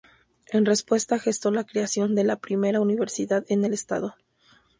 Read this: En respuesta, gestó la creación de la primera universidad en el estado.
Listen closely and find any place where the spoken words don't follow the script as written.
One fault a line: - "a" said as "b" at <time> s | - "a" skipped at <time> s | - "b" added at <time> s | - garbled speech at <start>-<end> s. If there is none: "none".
none